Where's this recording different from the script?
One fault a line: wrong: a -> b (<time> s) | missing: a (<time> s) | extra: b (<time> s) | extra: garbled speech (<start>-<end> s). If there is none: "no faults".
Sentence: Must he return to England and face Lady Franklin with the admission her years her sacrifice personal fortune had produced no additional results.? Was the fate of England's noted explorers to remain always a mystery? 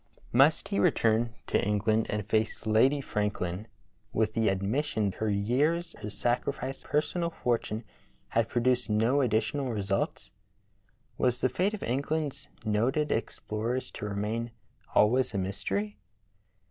no faults